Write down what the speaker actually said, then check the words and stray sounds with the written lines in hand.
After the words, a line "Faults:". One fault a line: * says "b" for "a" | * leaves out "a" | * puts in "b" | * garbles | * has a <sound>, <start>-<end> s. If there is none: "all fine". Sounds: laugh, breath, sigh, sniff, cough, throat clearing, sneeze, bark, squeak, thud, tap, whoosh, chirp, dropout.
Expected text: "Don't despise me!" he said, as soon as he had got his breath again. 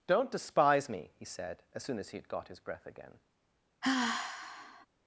"Don't despise me!" he said, as soon as he had got his breath again.
Faults:
* has a sigh, 3.8-4.9 s